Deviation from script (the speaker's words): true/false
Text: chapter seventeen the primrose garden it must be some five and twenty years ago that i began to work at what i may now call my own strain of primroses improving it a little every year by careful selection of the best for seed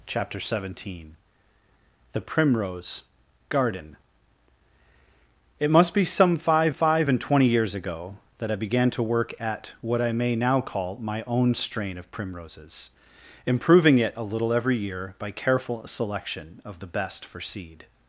true